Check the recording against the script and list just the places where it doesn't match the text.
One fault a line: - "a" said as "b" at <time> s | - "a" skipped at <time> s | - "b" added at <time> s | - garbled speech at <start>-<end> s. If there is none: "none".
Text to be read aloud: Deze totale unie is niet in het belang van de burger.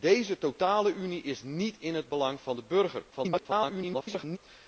- garbled speech at 3.1-4.4 s